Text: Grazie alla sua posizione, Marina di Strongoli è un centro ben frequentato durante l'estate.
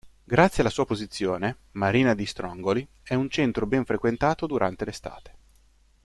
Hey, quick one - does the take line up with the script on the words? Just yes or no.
yes